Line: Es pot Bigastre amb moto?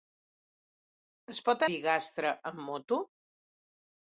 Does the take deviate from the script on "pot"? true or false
false